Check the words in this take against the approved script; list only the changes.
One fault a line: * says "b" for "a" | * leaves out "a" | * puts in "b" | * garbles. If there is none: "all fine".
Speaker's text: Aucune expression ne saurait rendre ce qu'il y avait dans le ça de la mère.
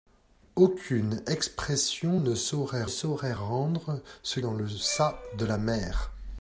* puts in "saurait"
* leaves out "qu'il y avait"